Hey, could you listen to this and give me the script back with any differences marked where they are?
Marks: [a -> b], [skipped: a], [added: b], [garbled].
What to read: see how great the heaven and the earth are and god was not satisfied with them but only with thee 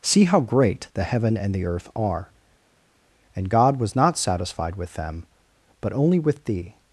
see how great the heaven and the earth are and god was not satisfied with them but only with thee